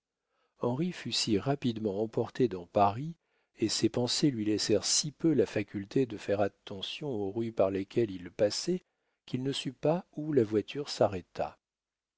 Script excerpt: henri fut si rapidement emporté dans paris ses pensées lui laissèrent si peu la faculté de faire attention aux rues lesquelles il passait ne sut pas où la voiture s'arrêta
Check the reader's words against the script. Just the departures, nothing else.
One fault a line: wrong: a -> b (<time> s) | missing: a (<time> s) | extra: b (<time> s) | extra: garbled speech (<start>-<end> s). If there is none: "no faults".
extra: et (3.6 s)
extra: par (7.5 s)
extra: qu'il (9.3 s)